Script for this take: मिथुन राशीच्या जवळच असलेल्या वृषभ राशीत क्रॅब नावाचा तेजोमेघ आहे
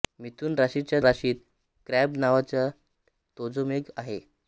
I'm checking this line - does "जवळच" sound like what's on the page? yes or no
no